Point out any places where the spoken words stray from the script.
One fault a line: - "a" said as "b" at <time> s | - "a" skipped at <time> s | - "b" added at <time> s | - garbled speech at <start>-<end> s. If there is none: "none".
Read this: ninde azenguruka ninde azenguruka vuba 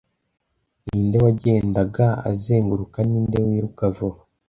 - "wagendaga" added at 1.2 s
- "azenguruka" said as "wiruka" at 3.5 s